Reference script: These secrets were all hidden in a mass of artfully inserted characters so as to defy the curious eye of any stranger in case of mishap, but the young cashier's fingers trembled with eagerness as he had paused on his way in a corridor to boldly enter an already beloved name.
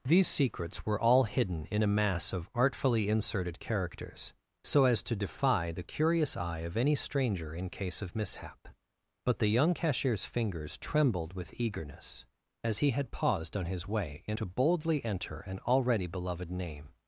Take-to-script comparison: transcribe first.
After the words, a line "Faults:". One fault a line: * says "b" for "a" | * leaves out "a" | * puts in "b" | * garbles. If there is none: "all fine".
These secrets were all hidden in a mass of artfully inserted characters so as to defy the curious eye of any stranger in case of mishap, but the young cashier's fingers trembled with eagerness as he had paused on his way in to boldly enter an already beloved name.
Faults:
* leaves out "a corridor"